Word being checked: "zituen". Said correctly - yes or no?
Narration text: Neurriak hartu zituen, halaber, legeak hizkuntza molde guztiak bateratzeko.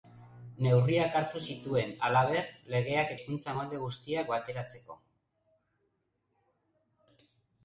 yes